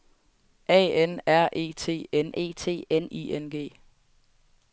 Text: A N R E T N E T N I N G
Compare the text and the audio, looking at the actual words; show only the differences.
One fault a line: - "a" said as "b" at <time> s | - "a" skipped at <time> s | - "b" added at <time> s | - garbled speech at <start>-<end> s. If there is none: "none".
none